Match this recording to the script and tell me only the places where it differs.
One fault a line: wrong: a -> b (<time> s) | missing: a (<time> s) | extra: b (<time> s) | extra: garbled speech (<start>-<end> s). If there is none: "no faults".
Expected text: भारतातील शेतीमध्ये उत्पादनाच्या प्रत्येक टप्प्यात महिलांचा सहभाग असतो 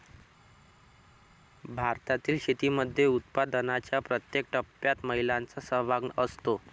no faults